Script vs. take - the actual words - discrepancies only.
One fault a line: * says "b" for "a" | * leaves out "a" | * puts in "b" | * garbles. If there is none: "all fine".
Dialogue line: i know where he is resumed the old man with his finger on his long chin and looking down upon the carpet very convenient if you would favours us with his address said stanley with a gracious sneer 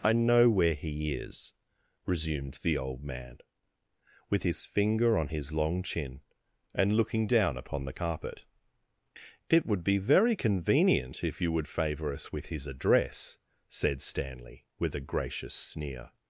* puts in "it would be"
* says "favour" for "favours"